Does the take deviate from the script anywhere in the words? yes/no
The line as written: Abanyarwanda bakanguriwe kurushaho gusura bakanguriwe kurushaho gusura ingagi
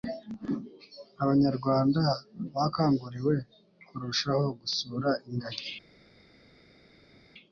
yes